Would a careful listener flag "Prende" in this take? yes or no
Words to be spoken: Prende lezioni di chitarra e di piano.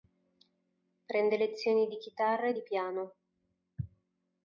no